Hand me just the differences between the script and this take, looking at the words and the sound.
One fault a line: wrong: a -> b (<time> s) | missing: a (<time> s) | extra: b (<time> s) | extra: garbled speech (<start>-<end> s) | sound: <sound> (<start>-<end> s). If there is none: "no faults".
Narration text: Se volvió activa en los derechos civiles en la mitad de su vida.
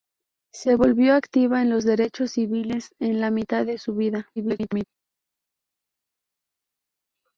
extra: garbled speech (4.4-4.9 s)